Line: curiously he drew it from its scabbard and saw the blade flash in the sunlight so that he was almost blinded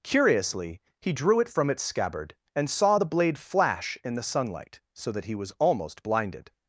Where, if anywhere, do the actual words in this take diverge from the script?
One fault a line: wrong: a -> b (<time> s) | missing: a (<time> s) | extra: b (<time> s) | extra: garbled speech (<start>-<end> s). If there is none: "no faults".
no faults